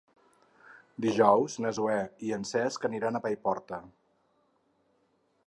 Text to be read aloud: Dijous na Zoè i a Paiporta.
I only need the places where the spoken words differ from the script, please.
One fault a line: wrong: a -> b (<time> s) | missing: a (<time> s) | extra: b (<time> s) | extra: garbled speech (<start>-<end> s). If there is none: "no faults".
extra: en Cesc aniran (2.4 s)